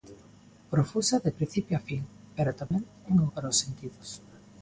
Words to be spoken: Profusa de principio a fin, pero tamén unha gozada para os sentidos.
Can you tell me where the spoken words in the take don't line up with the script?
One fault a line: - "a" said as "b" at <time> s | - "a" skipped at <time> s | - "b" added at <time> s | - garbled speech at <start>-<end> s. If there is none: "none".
- "gozada" skipped at 3.3 s